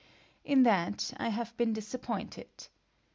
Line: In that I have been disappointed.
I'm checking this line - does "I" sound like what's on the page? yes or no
yes